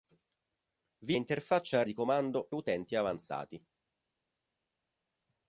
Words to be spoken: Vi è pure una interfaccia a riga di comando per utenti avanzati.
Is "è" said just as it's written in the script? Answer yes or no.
no